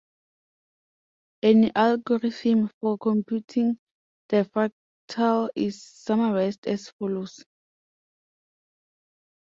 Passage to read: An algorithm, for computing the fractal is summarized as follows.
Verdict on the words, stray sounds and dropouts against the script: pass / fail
pass